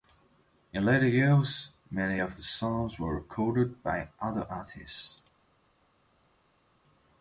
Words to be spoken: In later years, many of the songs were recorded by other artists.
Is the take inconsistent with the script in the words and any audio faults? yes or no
no